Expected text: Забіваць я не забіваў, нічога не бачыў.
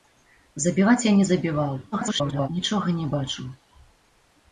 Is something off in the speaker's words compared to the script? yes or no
yes